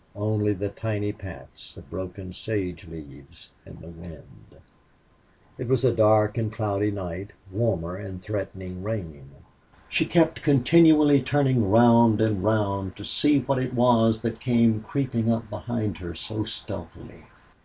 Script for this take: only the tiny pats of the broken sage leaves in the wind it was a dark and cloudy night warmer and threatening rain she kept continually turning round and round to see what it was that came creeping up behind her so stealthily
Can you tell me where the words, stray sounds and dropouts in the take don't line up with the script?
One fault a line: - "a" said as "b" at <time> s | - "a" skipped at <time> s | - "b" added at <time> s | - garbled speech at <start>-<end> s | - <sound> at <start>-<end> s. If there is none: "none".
- "the" skipped at 1.9 s